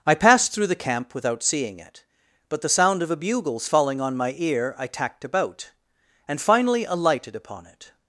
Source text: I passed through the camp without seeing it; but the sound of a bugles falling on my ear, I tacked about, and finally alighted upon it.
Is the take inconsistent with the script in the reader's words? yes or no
no